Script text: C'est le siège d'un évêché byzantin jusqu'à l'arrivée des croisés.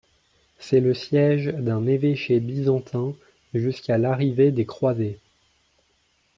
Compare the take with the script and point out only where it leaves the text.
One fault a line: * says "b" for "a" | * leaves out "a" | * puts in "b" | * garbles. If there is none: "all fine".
all fine